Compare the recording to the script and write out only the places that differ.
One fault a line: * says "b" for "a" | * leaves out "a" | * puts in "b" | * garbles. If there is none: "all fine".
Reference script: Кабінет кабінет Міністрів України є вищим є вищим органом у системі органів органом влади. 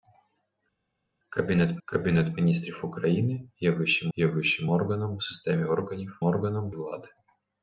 all fine